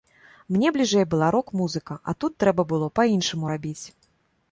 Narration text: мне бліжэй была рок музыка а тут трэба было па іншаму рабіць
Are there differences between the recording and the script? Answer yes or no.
no